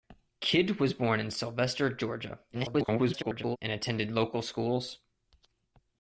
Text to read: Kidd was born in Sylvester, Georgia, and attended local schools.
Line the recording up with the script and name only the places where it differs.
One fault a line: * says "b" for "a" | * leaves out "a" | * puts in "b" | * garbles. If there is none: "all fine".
* garbles